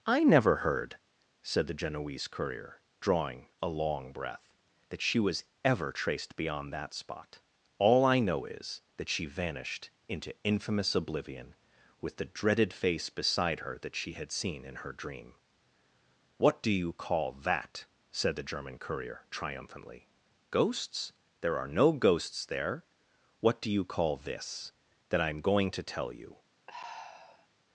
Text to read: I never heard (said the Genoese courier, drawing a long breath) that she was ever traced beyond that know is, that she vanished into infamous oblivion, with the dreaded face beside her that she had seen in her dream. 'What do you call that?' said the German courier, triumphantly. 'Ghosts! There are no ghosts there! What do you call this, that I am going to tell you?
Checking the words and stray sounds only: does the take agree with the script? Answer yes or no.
no